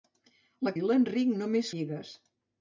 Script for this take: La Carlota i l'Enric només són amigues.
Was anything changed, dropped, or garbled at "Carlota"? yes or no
yes